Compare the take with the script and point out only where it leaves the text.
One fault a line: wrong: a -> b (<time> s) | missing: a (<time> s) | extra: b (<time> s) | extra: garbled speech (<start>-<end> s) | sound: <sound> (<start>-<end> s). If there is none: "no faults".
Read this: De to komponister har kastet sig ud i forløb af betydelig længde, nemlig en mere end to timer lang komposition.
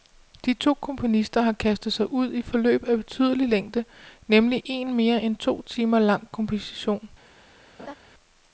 sound: laugh (7.8-7.9 s)